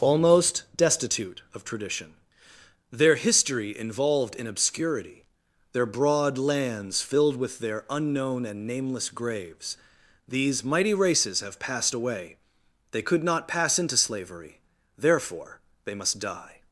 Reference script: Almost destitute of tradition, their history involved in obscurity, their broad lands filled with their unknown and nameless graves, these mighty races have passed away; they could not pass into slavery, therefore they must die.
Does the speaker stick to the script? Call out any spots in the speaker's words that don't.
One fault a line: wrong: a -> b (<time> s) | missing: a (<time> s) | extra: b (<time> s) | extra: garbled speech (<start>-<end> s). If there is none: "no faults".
no faults